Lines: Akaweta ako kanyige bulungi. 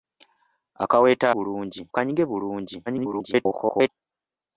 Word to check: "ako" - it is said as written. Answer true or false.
false